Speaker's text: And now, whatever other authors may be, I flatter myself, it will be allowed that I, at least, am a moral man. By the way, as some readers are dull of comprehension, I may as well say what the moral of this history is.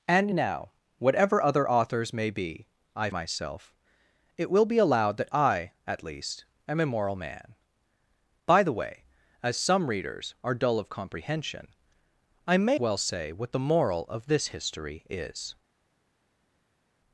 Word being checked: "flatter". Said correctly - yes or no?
no